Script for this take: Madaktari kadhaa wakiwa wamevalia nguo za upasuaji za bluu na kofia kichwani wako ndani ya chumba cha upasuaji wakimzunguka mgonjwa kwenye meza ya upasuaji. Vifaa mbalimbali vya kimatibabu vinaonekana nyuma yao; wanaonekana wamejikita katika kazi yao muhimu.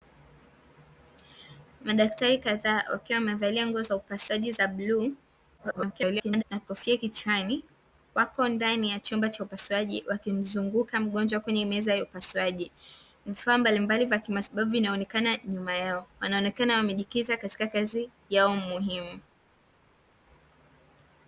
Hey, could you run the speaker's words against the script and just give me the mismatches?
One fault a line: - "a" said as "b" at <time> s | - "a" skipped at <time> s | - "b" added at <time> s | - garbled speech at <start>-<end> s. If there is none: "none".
- garbled speech at 5.6-6.4 s